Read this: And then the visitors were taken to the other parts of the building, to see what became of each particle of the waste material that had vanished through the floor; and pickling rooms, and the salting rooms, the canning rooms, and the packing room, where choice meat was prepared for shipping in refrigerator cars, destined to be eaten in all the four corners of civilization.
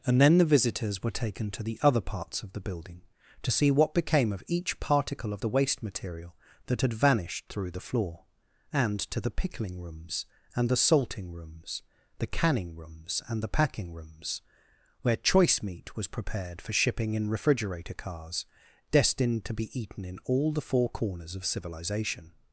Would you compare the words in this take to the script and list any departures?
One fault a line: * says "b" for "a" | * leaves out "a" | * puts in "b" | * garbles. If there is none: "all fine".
* puts in "to the"
* says "rooms" for "room"